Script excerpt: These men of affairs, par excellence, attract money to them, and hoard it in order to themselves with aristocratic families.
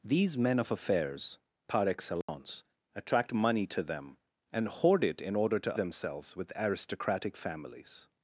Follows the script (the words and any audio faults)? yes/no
no